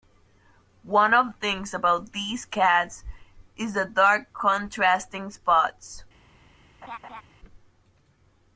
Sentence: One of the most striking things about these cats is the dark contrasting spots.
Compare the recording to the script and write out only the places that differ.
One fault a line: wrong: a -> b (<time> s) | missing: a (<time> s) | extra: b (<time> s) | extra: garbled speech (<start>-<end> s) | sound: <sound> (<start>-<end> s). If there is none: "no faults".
missing: the most striking (1.3 s)
sound: laugh (6.8-7.2 s)